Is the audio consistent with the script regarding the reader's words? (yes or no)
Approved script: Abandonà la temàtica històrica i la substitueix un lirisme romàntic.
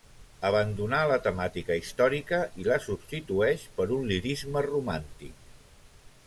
no